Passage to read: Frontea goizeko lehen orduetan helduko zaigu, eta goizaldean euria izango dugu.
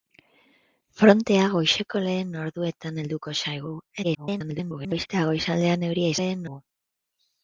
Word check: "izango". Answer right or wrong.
wrong